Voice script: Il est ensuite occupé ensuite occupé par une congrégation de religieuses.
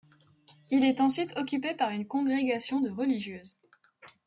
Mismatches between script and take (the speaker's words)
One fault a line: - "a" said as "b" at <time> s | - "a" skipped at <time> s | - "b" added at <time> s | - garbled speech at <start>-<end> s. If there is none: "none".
- "ensuite occupé" skipped at 1.8 s